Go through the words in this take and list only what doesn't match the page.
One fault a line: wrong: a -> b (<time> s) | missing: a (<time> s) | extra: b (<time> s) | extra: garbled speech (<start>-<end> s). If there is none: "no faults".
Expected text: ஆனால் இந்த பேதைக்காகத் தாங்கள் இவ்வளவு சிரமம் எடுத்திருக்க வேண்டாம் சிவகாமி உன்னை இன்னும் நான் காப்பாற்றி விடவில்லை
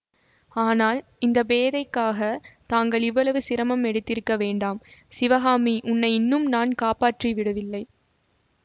no faults